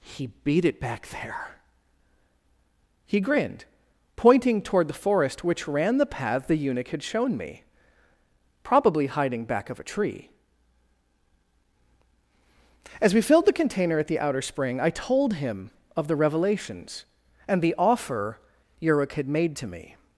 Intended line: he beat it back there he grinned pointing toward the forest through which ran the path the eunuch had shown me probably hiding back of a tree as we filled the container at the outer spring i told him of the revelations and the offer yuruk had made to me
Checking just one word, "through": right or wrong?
wrong